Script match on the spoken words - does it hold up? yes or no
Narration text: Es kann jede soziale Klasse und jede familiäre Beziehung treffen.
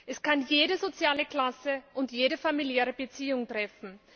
yes